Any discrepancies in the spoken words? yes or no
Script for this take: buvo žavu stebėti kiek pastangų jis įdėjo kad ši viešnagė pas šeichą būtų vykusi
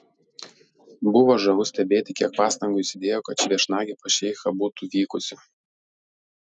no